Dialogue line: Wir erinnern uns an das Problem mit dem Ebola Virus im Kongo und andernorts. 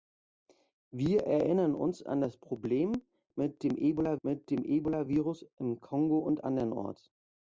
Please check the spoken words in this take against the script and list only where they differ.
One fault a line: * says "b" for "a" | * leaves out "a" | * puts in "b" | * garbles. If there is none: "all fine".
* puts in "mit dem Ebola"